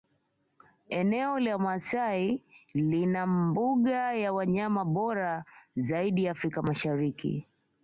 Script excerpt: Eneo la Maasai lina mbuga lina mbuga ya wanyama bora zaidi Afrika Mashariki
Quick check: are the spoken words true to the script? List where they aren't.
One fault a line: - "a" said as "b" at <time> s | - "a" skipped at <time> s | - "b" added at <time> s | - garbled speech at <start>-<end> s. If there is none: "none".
- "lina mbuga" skipped at 4.1 s